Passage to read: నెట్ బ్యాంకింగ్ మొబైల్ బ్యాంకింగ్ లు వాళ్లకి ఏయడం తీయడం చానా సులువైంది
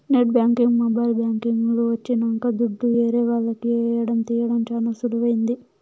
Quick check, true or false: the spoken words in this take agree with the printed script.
false